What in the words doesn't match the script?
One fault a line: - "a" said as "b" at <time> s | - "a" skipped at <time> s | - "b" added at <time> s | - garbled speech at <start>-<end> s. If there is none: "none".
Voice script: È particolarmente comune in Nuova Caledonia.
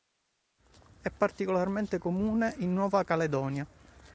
none